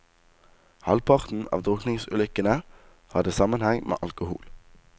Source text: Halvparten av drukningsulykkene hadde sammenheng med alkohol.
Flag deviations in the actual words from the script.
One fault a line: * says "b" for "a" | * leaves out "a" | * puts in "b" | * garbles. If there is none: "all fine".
all fine